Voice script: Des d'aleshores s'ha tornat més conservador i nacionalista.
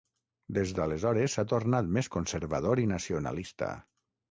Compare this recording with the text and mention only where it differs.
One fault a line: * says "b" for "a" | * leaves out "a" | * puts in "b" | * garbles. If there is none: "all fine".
all fine